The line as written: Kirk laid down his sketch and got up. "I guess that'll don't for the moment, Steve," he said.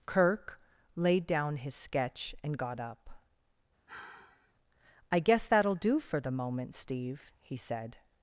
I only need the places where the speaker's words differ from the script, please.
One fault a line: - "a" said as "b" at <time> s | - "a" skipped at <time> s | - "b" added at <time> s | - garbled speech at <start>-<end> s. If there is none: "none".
- "don't" said as "do" at 5.7 s